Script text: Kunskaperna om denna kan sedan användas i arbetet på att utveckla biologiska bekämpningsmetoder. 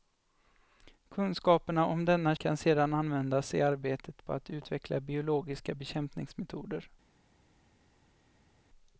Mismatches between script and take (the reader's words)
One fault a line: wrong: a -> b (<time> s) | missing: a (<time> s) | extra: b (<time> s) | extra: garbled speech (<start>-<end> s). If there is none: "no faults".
no faults